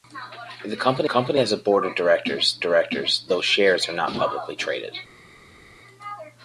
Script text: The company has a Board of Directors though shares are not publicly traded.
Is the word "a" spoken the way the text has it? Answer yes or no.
yes